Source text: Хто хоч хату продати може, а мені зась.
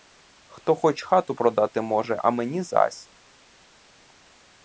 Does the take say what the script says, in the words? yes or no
yes